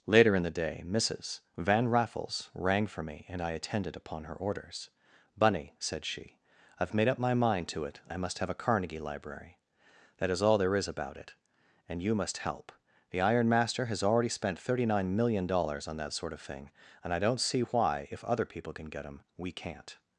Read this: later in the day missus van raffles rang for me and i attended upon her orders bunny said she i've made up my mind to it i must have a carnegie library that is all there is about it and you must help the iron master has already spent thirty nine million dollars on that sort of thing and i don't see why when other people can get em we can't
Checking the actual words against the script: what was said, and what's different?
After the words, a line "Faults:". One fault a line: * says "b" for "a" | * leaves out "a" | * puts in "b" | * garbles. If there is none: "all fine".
later in the day missus van raffles rang for me and i attended upon her orders bunny said she i've made up my mind to it i must have a carnegie library that is all there is about it and you must help the iron master has already spent thirty nine million dollars on that sort of thing and i don't see why if other people can get em we can't
Faults:
* says "if" for "when"